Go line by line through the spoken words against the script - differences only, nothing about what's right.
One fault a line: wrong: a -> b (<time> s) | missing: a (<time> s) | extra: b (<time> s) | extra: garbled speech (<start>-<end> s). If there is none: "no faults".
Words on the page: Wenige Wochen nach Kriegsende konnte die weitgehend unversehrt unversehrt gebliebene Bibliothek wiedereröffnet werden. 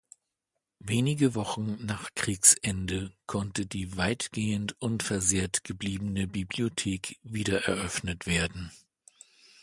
missing: unversehrt (5.6 s)